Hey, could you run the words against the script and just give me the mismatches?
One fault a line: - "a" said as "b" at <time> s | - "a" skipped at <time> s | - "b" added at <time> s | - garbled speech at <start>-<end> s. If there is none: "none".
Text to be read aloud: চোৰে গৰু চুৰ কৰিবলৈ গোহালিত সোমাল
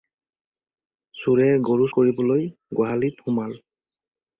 - "চুৰ" skipped at 1.9 s